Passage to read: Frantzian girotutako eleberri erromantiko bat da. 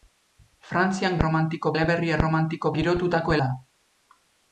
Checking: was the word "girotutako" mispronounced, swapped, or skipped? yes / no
yes